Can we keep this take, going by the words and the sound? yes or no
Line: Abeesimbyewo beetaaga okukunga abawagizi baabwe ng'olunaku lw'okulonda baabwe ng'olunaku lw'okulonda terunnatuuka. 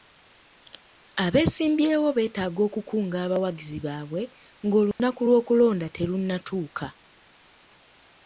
no